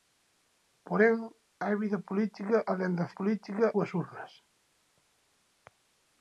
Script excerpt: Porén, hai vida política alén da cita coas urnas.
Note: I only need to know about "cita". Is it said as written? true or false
false